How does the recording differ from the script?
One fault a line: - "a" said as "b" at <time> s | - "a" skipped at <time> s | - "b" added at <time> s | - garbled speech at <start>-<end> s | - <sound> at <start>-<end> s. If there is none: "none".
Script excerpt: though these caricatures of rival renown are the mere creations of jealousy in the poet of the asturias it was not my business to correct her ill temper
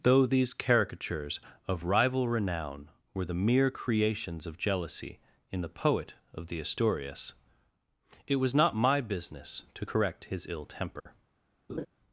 - "are" said as "were" at 3.1 s
- "her" said as "his" at 10.2 s
- dropout at 11.0-11.1 s
- laugh at 11.7-11.9 s